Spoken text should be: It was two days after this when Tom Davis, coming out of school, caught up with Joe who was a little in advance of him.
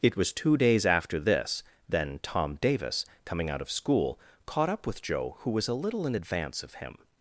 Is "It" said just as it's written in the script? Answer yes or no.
yes